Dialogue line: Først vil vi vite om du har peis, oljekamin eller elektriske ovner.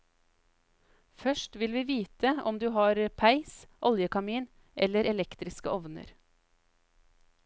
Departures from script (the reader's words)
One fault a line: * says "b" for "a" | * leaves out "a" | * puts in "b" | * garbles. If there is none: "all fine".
all fine